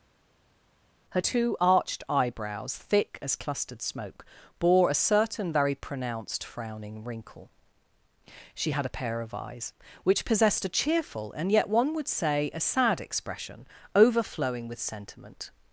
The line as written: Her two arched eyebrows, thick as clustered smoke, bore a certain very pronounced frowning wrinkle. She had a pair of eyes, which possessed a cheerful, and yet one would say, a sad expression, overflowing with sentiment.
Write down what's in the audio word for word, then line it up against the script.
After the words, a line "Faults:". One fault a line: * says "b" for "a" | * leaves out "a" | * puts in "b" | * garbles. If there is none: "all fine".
Her two arched eyebrows, thick as clustered smoke, bore a certain very pronounced frowning wrinkle. She had a pair of eyes, which possessed a cheerful, and yet one would say, a sad expression, overflowing with sentiment.
Faults:
all fine